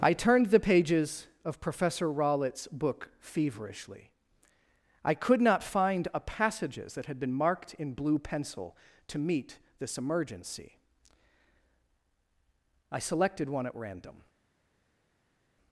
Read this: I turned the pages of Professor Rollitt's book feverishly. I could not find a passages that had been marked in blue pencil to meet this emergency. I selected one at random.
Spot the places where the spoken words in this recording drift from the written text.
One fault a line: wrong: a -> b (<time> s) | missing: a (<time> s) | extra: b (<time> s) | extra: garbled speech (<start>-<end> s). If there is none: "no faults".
no faults